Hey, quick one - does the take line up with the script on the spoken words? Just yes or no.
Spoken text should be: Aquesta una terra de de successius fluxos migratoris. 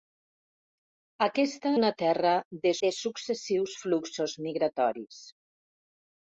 yes